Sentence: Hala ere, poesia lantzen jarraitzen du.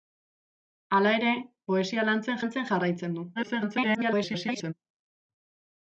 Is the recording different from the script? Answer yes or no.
yes